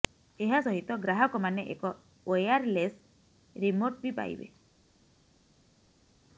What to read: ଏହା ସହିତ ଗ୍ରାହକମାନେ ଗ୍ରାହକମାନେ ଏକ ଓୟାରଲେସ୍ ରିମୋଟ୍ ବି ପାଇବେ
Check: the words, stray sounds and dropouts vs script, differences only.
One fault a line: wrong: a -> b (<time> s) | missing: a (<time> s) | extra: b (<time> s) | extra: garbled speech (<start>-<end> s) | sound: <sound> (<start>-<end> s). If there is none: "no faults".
missing: ଗ୍ରାହକମାନେ (1.6 s)